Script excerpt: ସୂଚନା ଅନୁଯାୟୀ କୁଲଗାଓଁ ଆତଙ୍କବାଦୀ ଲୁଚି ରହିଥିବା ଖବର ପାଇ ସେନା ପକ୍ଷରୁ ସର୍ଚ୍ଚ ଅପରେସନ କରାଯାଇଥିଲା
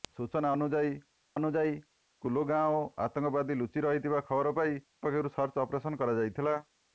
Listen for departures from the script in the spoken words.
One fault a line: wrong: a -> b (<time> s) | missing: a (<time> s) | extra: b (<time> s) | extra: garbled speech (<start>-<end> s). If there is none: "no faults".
extra: ଅନୁଯାୟୀ (1.3 s)
missing: ସେନା (4.8 s)